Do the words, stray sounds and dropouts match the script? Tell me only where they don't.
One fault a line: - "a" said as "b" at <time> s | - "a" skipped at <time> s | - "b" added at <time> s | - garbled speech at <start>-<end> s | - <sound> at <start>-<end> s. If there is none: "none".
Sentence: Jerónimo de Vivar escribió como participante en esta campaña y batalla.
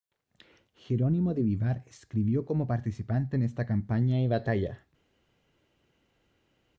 none